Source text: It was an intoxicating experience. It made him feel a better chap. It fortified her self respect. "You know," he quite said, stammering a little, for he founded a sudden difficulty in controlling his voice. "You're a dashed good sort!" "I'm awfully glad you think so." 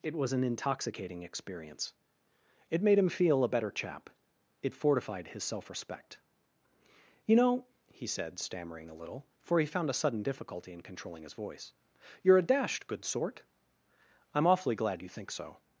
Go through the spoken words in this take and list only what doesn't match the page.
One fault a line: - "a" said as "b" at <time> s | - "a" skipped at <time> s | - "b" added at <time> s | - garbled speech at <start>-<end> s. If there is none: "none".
- "her" said as "his" at 5.3 s
- "quite" skipped at 8.1 s
- "founded" said as "found" at 9.7 s